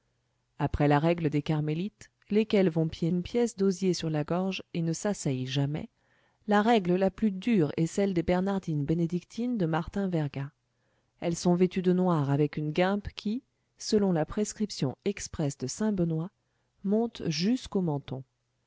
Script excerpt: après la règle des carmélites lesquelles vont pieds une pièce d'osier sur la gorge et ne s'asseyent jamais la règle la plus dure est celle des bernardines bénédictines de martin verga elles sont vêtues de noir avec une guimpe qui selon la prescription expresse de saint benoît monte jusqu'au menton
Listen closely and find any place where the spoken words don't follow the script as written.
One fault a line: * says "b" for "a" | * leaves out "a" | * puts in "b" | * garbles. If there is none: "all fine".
all fine